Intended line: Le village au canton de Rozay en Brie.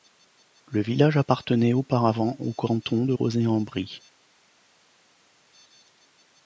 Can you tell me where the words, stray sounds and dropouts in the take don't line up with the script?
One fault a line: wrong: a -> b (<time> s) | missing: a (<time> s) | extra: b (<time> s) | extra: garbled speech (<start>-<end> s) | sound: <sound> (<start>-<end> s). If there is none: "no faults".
extra: appartenait auparavant (1.2 s)